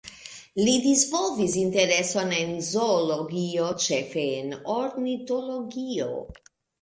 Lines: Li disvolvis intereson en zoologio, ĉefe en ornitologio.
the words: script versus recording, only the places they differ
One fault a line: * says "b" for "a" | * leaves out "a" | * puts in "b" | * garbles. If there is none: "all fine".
all fine